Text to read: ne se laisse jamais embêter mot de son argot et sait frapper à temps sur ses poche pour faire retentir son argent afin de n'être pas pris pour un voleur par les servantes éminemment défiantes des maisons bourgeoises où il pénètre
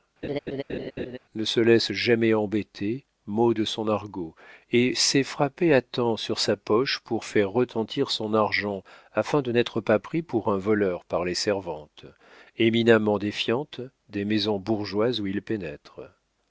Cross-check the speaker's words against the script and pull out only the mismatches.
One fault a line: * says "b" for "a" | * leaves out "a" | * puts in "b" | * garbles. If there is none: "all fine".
* says "sa" for "ses"